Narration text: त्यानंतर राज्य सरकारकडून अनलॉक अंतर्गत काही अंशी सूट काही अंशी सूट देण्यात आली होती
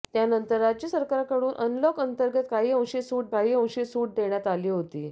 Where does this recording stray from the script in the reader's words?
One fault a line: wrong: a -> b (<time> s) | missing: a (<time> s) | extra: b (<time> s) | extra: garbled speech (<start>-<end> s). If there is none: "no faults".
no faults